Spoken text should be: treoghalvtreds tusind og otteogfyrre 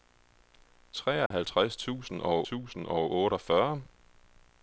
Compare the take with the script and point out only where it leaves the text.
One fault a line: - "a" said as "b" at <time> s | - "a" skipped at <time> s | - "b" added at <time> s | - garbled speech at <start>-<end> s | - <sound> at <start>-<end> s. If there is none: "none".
- dropout at 1.3-1.3 s
- "tusind og" added at 2.4 s